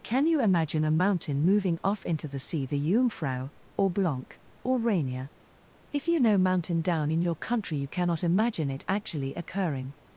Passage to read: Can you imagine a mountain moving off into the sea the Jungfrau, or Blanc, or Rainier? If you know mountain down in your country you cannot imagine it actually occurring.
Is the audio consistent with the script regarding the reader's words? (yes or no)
yes